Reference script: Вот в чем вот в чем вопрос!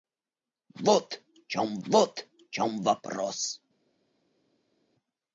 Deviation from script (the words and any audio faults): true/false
false